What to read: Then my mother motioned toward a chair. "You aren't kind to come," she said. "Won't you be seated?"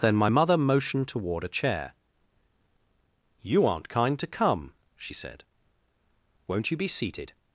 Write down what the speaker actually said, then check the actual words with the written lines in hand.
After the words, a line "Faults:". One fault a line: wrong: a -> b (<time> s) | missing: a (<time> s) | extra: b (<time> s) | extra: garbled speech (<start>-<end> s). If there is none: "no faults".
Then my mother motioned toward a chair. "You aren't kind to come," she said. "Won't you be seated?"
Faults:
no faults